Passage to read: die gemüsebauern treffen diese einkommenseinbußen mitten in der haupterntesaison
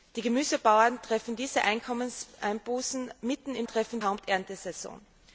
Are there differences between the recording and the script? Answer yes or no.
yes